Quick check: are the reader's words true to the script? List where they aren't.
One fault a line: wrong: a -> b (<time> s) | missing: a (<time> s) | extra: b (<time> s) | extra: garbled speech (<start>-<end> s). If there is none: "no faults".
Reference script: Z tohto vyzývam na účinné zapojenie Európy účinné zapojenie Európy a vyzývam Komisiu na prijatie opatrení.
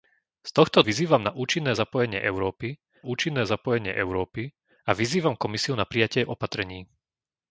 no faults